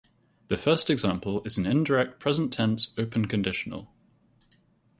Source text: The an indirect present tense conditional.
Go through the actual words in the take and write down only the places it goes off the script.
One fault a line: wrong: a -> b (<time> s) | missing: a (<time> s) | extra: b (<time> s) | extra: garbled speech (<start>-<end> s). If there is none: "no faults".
extra: first example is (0.6 s)
extra: open (3.0 s)